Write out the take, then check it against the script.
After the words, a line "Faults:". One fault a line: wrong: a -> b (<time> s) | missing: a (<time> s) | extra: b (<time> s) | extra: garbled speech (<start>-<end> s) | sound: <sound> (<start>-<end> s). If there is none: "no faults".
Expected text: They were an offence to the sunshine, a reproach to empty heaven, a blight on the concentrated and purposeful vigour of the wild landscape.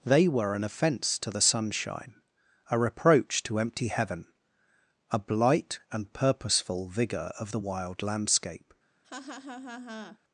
They were an offence to the sunshine, a reproach to empty heaven, a blight and purposeful vigour of the wild landscape.
Faults:
missing: on the concentrated (5.8 s)
sound: laugh (9.0-10.2 s)